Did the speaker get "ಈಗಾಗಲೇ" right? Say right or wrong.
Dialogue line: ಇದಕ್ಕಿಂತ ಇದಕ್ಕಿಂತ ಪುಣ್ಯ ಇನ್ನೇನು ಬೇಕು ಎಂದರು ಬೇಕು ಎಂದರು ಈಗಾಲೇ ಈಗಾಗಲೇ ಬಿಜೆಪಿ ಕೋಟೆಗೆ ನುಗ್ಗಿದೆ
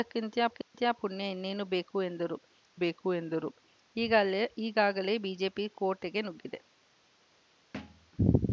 right